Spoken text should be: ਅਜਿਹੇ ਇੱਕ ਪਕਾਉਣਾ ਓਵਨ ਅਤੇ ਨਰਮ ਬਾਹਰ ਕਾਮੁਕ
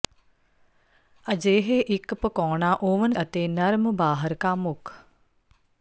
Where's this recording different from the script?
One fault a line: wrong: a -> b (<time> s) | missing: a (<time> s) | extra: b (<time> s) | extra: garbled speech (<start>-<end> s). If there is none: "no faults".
no faults